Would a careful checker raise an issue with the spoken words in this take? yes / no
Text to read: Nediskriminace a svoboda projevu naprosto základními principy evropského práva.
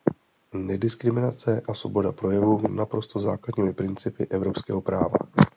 no